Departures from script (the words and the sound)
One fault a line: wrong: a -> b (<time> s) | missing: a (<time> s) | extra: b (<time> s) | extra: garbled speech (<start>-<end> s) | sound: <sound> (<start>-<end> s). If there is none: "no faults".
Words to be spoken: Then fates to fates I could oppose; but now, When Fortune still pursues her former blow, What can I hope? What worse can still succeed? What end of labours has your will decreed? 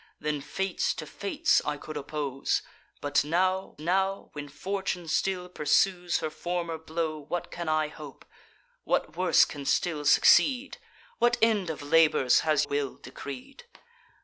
extra: now (3.8 s)
missing: your (12.7 s)